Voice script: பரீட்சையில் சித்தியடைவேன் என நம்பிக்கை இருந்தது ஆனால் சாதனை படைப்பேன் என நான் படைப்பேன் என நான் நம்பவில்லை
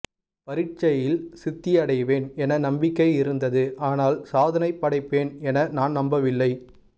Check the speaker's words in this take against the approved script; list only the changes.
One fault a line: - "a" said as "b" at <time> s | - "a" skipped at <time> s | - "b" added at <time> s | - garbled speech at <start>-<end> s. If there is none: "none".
- "படைப்பேன் என நான்" skipped at 6.0 s